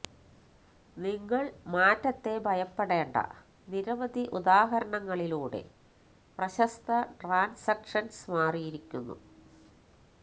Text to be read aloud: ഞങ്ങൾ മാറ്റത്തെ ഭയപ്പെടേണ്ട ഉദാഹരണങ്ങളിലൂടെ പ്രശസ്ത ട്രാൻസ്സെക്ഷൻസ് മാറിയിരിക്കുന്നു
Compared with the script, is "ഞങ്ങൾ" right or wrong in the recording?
wrong